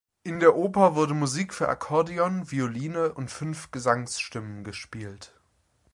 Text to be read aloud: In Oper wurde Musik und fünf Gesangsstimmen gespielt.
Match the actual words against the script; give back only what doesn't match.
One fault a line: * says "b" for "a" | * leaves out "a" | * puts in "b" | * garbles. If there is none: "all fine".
* puts in "der"
* puts in "für Akkordeon Violine"